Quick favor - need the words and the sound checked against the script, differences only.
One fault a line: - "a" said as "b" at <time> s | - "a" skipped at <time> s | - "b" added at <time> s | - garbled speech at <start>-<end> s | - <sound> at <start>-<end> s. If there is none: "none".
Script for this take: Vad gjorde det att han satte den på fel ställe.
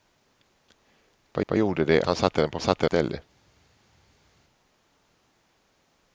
- "vad" added at 1.5 s
- "att" skipped at 2.0 s
- "fel" said as "satte" at 2.6 s